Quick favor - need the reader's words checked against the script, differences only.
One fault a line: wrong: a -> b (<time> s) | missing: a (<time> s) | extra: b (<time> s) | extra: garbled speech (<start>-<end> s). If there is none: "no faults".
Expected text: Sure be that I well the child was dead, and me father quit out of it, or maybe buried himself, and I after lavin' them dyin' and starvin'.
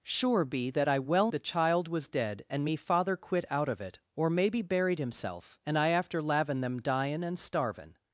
no faults